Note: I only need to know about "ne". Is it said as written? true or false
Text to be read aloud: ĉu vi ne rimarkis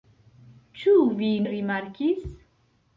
false